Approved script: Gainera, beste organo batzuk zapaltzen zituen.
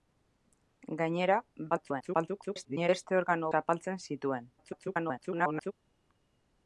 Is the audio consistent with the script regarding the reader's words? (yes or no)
no